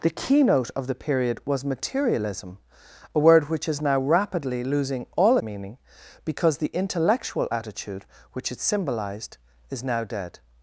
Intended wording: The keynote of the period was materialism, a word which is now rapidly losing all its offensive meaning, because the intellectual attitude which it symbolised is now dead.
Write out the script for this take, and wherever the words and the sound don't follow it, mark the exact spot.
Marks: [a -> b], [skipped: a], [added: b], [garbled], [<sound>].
The keynote of the period was materialism, a word which is now rapidly losing all [skipped: its offensive] meaning, because the intellectual attitude which it symbolised is now dead.